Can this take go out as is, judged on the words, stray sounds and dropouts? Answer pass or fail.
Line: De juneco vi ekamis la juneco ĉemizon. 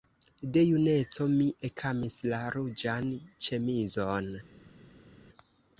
fail